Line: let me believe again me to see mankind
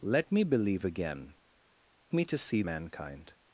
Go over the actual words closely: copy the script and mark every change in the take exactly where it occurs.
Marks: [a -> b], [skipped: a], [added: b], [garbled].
let me believe again me to see mankind